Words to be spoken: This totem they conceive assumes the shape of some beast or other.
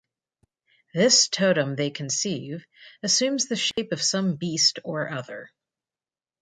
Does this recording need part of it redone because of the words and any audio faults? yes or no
yes